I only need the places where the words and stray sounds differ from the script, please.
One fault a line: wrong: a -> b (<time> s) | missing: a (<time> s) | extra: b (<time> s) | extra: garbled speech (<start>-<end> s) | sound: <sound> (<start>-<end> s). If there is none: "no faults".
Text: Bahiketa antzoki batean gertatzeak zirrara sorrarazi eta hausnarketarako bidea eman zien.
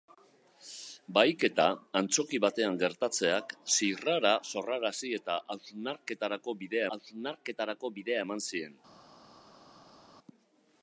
extra: hausnarketarako bidea (7.0 s)